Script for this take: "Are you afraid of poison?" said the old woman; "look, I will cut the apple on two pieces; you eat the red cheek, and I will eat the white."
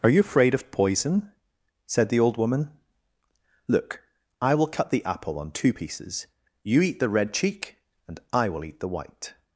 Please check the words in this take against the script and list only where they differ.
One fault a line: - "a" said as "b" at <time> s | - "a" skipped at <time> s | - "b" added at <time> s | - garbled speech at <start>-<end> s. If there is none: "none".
none